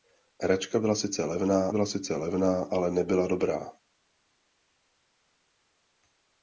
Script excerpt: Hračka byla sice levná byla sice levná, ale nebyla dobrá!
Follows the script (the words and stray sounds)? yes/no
yes